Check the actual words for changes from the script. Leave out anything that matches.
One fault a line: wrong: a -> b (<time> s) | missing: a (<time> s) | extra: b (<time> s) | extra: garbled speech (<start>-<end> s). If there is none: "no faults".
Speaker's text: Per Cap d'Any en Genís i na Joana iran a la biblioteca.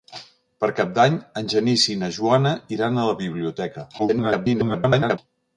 extra: garbled speech (4.0-5.2 s)